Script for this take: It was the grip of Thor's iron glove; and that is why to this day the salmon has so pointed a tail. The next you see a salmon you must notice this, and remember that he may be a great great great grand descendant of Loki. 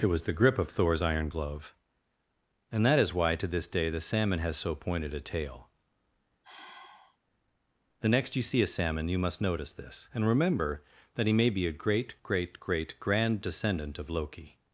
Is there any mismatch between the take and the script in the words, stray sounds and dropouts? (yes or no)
yes